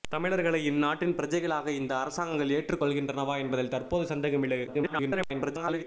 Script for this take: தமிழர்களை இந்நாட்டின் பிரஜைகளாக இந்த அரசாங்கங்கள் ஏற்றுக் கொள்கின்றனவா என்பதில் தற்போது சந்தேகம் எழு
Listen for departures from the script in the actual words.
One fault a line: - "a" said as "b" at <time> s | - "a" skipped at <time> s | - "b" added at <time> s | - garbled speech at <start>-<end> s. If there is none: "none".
- garbled speech at 4.7-5.8 s